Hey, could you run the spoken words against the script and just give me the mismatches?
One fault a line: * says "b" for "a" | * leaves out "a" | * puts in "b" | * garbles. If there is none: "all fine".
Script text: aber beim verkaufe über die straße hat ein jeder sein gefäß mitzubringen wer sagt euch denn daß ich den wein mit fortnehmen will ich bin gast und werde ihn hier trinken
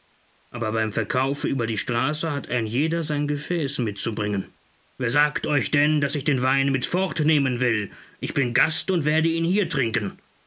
all fine